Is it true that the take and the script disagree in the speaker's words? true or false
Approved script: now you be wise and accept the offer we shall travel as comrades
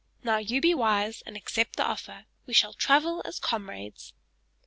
false